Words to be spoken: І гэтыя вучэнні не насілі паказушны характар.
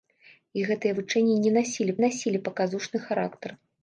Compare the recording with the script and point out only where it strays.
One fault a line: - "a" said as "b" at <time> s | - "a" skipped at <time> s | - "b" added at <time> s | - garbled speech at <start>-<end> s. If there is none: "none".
- "насілі" added at 2.0 s